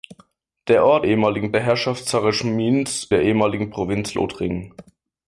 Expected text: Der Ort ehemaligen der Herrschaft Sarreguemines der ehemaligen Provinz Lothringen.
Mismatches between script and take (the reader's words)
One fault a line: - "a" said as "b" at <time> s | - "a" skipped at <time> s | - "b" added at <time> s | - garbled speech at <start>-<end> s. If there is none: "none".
none